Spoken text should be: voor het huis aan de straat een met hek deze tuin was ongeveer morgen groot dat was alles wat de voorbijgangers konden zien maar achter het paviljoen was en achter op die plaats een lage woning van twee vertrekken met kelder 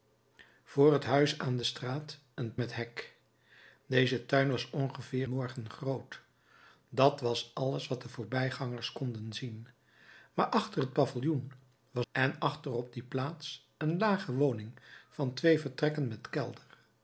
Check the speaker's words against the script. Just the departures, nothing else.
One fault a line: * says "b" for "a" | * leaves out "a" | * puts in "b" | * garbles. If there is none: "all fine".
all fine